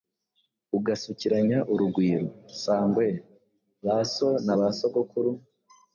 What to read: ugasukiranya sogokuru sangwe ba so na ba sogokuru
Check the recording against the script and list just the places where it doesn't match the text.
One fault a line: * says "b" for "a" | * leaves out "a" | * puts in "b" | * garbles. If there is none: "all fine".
* says "urugwiro" for "sogokuru"